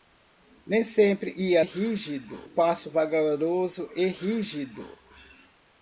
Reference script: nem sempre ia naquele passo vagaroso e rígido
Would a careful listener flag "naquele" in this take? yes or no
yes